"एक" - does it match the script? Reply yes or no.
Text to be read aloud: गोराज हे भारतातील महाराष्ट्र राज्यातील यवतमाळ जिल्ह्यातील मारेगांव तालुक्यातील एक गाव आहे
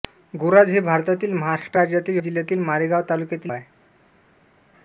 no